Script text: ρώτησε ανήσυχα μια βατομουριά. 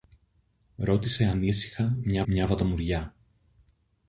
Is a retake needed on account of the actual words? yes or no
yes